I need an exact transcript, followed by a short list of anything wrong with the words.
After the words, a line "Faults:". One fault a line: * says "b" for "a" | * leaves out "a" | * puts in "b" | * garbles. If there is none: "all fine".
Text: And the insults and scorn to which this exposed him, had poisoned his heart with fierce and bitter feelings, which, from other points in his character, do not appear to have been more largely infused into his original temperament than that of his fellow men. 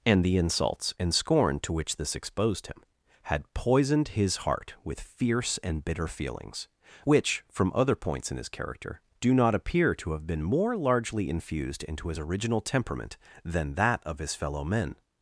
And the insults and scorn to which this exposed him, had poisoned his heart with fierce and bitter feelings, which, from other points in his character, do not appear to have been more largely infused into his original temperament than that of his fellow men.
Faults:
all fine